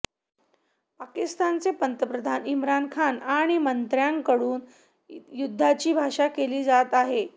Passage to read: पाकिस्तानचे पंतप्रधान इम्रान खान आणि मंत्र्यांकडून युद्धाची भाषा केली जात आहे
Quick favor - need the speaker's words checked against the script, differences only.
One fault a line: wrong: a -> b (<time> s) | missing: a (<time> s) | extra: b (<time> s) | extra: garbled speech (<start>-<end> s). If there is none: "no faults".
no faults